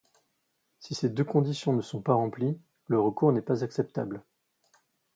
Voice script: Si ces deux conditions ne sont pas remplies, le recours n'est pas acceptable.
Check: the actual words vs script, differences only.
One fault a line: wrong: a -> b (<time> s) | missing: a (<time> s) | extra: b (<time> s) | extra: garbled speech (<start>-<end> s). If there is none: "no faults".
no faults